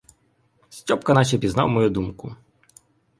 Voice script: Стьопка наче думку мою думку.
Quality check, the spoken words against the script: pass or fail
fail